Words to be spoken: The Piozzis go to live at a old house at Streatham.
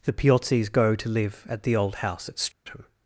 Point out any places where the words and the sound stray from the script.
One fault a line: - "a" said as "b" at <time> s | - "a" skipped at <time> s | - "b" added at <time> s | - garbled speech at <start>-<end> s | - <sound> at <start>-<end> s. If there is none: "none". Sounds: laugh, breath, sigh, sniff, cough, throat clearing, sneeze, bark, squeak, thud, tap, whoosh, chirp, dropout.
- "a" said as "the" at 1.6 s
- dropout at 2.5-2.7 s